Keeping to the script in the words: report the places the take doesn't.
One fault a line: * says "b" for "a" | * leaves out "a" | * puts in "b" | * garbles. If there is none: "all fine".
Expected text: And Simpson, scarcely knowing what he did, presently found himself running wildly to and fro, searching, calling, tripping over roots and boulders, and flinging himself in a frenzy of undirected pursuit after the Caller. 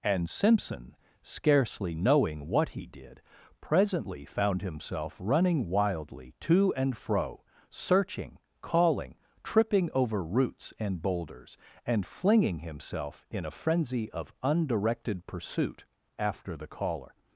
all fine